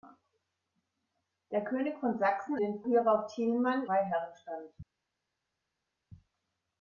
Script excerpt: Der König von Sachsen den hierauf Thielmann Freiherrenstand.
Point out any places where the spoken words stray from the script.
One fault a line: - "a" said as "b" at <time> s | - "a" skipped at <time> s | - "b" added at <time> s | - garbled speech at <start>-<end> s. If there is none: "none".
none